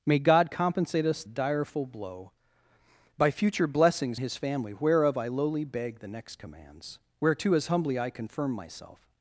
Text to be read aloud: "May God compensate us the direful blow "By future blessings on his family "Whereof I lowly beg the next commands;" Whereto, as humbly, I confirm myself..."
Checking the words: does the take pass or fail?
fail